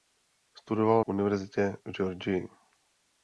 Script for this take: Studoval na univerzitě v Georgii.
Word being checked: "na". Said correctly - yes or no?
no